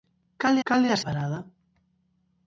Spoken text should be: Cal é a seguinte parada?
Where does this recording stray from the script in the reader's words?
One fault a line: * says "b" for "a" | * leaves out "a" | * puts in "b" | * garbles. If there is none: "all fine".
* puts in "cal"
* leaves out "seguinte"